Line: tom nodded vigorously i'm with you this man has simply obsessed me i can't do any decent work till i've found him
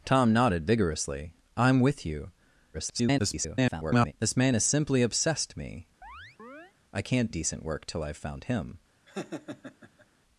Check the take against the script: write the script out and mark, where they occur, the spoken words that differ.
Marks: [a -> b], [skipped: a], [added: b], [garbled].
tom nodded vigorously i'm with you [garbled] this man has simply obsessed me i can't [skipped: do any] decent work till i've found him